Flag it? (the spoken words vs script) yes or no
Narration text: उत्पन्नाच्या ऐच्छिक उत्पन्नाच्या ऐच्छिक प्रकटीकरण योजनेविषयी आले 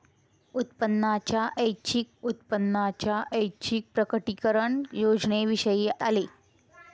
no